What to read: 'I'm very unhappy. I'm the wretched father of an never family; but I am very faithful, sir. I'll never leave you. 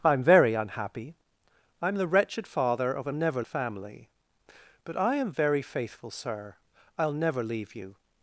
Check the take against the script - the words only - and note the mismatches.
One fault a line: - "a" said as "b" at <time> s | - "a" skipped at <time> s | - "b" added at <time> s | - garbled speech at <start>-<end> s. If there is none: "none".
none